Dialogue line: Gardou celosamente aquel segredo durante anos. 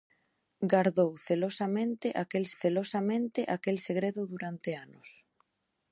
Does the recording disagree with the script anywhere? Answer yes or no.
yes